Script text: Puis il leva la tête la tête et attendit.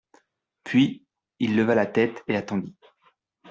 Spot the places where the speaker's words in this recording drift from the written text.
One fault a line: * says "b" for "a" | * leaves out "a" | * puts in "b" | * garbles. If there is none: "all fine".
* leaves out "la tête"